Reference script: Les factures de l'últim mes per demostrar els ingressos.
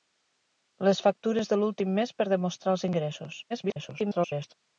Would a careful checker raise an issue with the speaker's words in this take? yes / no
yes